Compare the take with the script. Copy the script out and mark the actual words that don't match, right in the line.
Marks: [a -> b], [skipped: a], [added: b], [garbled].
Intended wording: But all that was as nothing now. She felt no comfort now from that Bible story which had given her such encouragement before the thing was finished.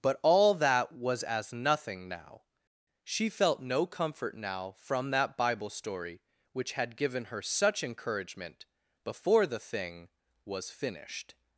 But all that was as nothing now. She felt no comfort now from that Bible story which had given her such encouragement before the thing was finished.